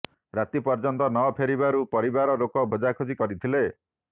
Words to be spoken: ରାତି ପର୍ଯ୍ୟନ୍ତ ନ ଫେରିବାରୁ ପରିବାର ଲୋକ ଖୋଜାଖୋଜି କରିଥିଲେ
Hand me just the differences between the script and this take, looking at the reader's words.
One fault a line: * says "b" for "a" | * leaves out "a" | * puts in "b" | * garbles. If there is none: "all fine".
all fine